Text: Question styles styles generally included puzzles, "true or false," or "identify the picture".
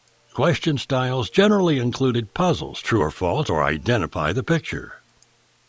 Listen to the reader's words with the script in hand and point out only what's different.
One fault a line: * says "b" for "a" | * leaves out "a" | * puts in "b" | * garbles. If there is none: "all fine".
* leaves out "styles"